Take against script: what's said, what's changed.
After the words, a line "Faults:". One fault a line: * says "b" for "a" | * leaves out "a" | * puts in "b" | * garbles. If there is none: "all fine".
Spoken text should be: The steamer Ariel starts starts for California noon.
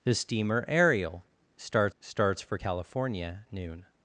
The steamer Ariel starts starts for California noon.
Faults:
all fine